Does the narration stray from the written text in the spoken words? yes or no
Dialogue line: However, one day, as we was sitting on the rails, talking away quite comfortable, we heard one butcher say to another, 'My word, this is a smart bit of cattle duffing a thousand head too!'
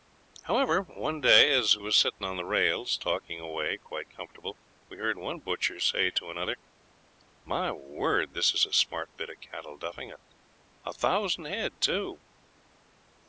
yes